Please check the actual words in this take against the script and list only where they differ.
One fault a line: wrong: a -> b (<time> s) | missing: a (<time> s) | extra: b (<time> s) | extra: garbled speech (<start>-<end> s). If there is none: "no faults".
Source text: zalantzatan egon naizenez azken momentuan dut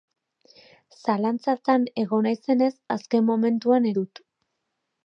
no faults